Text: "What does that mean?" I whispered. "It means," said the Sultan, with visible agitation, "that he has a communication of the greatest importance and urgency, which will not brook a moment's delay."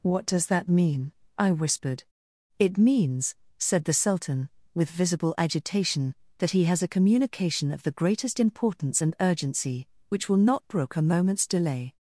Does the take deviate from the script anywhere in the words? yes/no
no